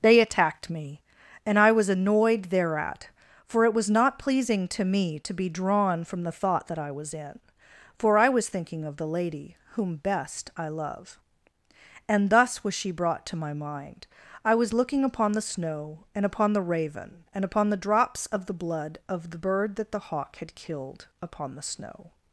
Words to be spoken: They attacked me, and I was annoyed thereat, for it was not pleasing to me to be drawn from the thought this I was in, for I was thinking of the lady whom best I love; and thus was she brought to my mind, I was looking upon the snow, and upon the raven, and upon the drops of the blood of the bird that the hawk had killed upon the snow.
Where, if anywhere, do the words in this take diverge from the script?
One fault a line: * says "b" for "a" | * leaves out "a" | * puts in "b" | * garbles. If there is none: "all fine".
* says "that" for "this"